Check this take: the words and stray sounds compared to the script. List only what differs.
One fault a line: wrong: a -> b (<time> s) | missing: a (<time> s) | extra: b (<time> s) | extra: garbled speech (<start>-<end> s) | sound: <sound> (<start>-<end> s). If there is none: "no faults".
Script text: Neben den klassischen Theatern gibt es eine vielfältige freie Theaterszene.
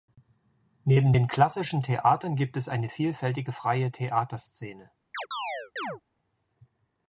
sound: chirp (5.1-6.0 s)